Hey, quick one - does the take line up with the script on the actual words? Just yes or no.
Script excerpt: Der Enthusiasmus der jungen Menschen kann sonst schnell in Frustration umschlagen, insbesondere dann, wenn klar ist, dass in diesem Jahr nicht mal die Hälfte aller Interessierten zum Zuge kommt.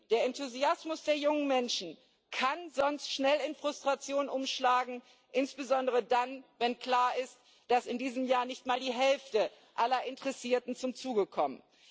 yes